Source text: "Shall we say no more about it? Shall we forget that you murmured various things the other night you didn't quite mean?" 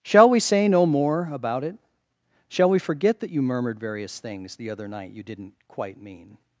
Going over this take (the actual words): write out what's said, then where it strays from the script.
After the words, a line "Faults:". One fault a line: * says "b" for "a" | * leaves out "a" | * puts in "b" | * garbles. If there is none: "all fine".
"Shall we say no more about it? Shall we forget that you murmured various things the other night you didn't quite mean?"
Faults:
all fine